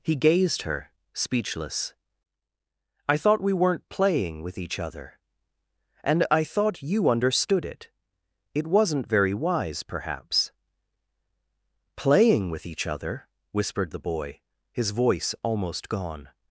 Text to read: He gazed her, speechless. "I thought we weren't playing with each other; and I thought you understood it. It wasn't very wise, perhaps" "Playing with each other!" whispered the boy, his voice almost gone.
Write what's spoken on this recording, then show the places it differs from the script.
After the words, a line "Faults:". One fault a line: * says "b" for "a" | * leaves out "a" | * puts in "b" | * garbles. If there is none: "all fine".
He gazed her, speechless. "I thought we weren't playing with each other; and I thought you understood it. It wasn't very wise, perhaps" "Playing with each other!" whispered the boy, his voice almost gone.
Faults:
all fine